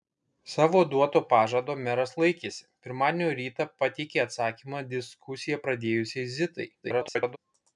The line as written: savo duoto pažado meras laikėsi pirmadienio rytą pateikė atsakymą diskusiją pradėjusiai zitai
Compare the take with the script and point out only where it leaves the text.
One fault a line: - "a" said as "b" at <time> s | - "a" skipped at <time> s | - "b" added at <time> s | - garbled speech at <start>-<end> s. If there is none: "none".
- garbled speech at 6.8-7.4 s